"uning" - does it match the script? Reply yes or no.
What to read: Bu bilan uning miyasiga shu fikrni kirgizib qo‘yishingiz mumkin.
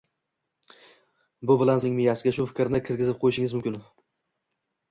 yes